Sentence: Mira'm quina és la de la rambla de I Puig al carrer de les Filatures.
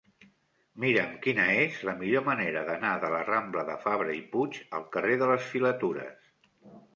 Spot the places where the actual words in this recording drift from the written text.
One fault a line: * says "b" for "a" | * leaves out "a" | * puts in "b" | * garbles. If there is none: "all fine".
* puts in "millor manera d'anar"
* puts in "Fabra"